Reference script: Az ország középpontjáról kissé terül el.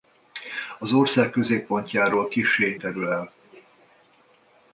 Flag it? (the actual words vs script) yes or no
no